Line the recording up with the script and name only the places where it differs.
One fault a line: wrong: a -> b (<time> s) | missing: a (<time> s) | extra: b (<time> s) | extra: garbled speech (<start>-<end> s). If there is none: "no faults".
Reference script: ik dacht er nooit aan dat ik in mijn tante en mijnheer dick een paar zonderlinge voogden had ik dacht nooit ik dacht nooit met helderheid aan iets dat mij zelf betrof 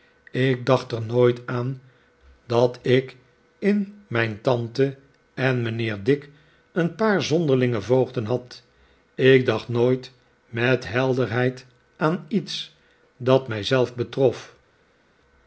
missing: ik dacht nooit (10.1 s)